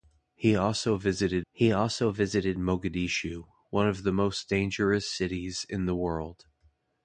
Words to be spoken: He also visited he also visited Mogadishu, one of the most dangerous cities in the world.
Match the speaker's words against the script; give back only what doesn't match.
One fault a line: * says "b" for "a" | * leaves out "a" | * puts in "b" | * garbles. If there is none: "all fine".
all fine